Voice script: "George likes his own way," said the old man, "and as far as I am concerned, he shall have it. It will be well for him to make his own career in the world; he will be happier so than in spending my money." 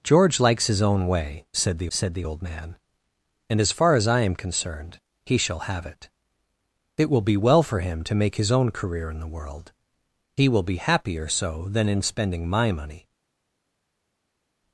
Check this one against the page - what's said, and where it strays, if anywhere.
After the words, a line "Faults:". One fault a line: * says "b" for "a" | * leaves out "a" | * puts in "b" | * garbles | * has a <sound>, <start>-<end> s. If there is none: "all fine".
"George likes his own way," said the said the old man, "and as far as I am concerned, he shall have it. It will be well for him to make his own career in the world; he will be happier so than in spending my money."
Faults:
* puts in "said the"